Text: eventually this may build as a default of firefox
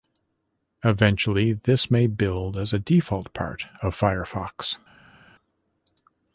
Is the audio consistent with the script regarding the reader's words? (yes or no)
no